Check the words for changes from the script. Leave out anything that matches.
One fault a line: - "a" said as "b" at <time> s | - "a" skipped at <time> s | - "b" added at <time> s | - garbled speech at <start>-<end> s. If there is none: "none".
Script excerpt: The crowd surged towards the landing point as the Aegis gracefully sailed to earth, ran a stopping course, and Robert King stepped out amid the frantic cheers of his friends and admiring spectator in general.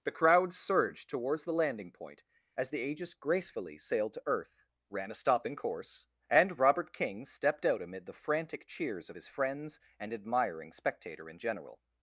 none